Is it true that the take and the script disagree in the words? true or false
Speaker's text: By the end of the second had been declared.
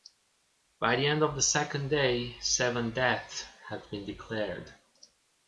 true